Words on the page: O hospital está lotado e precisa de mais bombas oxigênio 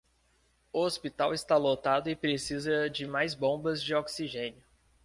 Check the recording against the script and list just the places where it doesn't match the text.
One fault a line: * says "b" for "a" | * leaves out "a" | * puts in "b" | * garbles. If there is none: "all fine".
* puts in "de"